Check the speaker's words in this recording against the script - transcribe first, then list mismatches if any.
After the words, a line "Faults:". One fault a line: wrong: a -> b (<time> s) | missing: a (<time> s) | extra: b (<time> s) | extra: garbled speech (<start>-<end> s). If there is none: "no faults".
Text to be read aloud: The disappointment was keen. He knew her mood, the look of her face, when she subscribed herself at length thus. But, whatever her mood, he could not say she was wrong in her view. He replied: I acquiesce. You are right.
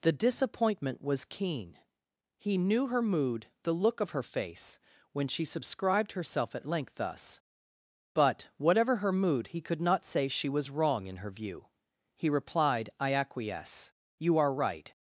The disappointment was keen. He knew her mood, the look of her face, when she subscribed herself at length thus. But, whatever her mood, he could not say she was wrong in her view. He replied: I acquiesce. You are right.
Faults:
no faults